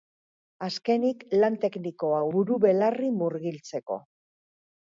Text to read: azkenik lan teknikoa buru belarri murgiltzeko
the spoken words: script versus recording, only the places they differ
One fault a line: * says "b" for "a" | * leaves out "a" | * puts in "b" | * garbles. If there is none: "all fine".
all fine